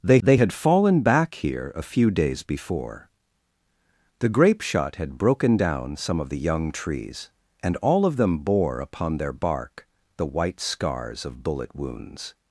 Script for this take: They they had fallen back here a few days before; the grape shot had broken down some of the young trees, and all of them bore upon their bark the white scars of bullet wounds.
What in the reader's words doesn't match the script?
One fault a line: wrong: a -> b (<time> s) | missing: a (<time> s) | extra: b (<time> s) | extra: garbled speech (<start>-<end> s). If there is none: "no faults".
no faults